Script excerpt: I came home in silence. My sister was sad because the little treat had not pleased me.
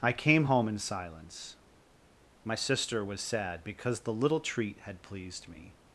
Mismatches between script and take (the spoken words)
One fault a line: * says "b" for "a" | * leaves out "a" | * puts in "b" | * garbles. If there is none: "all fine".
* leaves out "not"